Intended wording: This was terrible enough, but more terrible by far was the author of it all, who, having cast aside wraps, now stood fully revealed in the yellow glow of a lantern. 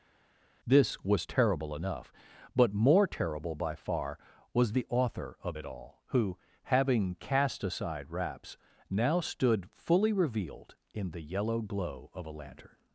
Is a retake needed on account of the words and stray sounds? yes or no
no